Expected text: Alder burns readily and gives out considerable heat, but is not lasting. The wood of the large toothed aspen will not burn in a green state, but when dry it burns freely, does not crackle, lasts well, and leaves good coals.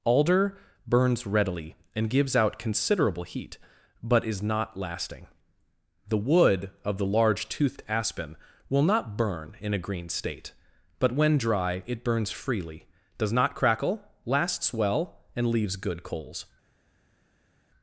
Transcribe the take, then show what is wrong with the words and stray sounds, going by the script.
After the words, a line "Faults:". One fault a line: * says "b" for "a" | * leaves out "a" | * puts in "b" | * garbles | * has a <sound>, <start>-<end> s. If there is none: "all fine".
Alder burns readily and gives out considerable heat, but is not lasting. The wood of the large toothed aspen will not burn in a green state, but when dry it burns freely, does not crackle, lasts well, and leaves good coals.
Faults:
all fine